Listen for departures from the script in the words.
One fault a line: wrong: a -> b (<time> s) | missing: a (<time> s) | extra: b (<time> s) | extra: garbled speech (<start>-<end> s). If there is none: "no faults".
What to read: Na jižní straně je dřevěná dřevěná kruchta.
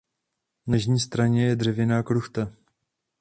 missing: dřevěná (2.0 s)